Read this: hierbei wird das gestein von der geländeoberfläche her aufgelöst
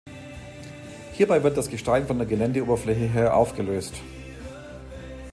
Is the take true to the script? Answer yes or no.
yes